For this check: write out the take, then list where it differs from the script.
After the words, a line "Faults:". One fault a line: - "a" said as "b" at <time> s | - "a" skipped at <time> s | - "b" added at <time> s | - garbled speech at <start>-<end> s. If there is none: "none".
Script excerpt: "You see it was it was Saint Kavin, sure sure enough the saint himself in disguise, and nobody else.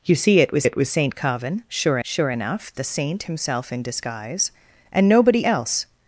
"You see it was it was Saint Kavin, sure sure enough the saint himself in disguise, and nobody else.
Faults:
none